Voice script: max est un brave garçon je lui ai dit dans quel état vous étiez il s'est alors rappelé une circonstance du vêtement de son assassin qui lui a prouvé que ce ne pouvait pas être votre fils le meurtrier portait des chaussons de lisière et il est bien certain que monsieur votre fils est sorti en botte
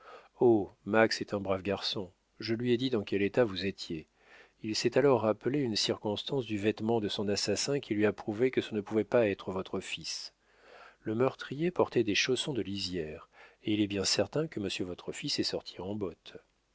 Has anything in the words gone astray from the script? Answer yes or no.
no